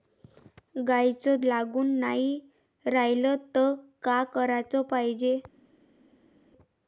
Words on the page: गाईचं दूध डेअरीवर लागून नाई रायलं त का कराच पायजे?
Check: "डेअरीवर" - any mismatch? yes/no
yes